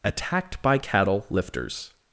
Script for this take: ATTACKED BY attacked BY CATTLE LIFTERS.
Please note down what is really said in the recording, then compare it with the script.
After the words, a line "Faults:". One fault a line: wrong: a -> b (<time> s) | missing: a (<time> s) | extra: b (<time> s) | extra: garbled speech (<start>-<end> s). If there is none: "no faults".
ATTACKED BY CATTLE LIFTERS.
Faults:
missing: attacked BY (0.8 s)